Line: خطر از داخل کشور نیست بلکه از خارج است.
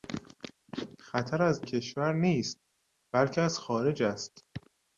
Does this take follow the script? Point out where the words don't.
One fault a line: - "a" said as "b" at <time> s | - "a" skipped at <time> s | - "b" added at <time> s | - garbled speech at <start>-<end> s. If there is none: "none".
- "داخل" skipped at 1.6 s